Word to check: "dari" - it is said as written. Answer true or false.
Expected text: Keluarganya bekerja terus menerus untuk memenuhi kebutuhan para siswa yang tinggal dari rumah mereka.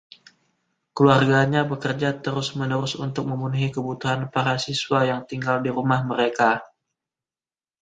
false